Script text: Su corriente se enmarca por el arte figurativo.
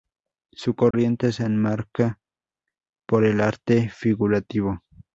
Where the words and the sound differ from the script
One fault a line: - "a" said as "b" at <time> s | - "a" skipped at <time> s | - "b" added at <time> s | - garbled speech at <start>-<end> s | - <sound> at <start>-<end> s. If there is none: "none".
- dropout at 0.9-0.9 s